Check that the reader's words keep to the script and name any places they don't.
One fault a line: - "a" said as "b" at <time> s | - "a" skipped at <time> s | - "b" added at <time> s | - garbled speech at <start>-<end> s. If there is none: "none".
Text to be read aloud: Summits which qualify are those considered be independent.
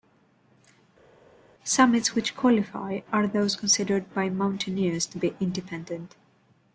- "by mountaineers to" added at 4.1 s